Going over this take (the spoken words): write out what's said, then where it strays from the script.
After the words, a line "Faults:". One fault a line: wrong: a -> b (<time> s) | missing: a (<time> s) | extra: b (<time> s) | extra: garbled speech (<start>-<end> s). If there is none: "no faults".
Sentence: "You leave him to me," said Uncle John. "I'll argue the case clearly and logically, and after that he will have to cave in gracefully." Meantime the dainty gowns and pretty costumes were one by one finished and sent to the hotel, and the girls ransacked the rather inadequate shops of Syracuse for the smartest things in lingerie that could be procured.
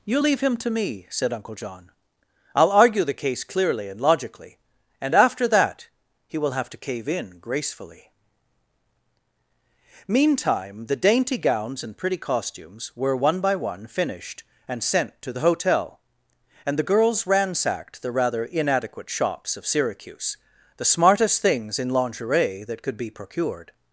"You leave him to me," said Uncle John. "I'll argue the case clearly and logically, and after that he will have to cave in gracefully." Meantime the dainty gowns and pretty costumes were one by one finished and sent to the hotel, and the girls ransacked the rather inadequate shops of Syracuse the smartest things in lingerie that could be procured.
Faults:
missing: for (20.4 s)